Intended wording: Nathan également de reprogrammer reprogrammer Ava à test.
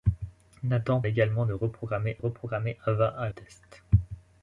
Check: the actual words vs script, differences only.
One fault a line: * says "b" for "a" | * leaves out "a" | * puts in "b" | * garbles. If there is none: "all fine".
all fine